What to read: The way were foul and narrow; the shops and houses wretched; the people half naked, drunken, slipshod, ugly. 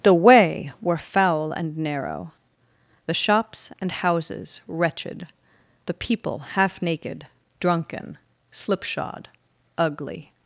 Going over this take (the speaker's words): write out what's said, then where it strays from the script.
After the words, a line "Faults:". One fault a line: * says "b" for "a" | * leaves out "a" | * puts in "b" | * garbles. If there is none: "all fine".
The way were foul and narrow; the shops and houses wretched; the people half naked, drunken, slipshod, ugly.
Faults:
all fine